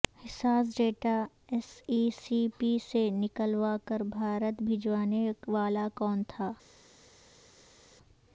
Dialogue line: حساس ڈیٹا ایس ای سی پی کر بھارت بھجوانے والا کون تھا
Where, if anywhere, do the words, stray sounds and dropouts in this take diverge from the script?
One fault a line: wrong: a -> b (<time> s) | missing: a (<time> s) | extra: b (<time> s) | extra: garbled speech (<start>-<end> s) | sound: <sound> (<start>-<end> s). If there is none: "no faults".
extra: سے نکلوا (2.8 s)